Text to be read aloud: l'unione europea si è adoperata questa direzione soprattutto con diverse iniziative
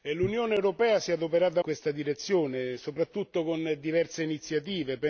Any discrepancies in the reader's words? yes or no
no